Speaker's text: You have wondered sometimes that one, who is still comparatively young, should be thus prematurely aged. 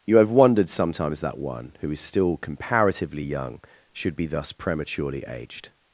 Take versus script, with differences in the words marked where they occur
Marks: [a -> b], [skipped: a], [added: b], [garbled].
You have wondered sometimes that one, who is still comparatively young, should be thus prematurely aged.